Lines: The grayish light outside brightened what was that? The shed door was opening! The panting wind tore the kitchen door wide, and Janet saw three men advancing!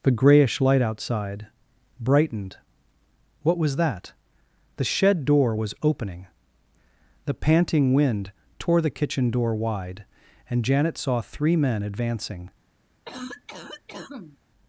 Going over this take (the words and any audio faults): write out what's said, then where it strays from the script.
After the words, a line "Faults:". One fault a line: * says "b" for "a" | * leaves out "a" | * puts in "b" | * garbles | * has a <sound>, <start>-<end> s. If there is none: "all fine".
The grayish light outside brightened what was that? The shed door was opening! The panting wind tore the kitchen door wide, and Janet saw three men advancing!
Faults:
* has a cough, 13.0-14.4 s